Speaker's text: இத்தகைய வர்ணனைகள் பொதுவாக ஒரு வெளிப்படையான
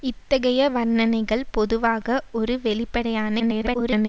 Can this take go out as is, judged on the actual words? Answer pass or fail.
fail